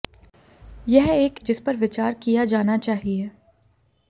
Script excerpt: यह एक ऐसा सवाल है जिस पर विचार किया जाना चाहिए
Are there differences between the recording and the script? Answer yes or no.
yes